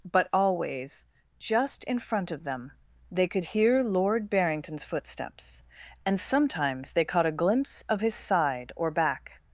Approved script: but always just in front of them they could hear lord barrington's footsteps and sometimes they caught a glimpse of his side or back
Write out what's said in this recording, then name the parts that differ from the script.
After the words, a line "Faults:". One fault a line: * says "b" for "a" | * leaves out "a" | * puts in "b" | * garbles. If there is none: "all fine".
but always just in front of them they could hear lord barrington's footsteps and sometimes they caught a glimpse of his side or back
Faults:
all fine